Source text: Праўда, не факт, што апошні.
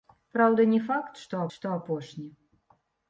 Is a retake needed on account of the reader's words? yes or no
yes